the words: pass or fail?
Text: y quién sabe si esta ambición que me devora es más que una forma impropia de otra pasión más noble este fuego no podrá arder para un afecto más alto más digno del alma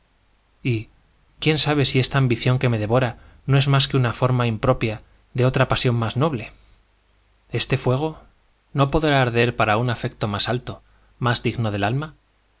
fail